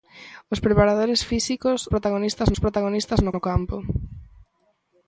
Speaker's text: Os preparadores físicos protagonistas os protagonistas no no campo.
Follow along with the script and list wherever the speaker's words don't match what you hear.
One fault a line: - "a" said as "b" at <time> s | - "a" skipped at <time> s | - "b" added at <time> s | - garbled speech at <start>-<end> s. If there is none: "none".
none